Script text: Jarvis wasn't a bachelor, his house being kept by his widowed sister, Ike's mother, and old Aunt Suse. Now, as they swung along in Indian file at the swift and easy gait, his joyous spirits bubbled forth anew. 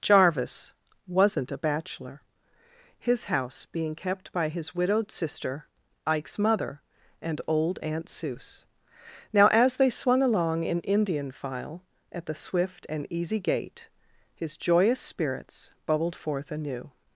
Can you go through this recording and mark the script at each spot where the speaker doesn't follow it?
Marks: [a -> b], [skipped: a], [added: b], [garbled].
Jarvis wasn't a bachelor, his house being kept by his widowed sister, Ike's mother, and old Aunt Suse. Now, as they swung along in Indian file at the swift and easy gait, his joyous spirits bubbled forth anew.